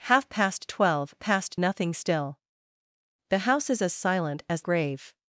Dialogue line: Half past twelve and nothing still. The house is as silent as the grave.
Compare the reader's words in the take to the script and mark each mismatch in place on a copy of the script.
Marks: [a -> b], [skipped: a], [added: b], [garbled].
Half past twelve [and -> past] nothing still. The house is as silent as [skipped: the] grave.